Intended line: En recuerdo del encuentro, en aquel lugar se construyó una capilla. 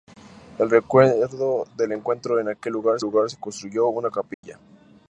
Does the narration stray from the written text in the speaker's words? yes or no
yes